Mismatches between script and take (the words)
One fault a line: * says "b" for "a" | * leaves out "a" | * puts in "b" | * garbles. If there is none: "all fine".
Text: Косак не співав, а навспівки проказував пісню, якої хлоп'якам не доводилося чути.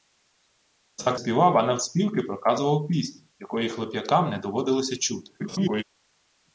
* leaves out "не"
* garbles